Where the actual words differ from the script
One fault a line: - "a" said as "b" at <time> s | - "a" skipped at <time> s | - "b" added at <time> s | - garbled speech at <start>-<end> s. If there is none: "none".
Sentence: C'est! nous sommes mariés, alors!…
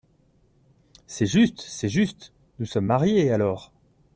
- "juste c'est juste" added at 1.3 s